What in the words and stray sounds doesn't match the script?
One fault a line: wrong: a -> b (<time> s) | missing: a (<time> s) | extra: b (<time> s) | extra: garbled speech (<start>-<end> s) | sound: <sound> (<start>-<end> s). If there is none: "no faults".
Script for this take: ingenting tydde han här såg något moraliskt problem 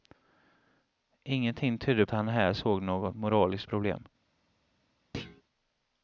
sound: thud (5.1-5.4 s)